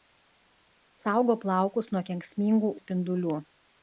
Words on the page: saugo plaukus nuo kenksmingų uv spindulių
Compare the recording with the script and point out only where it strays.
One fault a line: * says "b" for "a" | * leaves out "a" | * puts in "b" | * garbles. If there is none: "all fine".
* leaves out "uv"